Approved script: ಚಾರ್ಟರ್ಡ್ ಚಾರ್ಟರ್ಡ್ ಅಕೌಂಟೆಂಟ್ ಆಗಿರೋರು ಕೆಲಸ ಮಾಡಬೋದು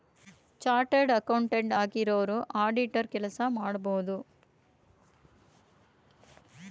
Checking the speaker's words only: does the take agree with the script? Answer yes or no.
no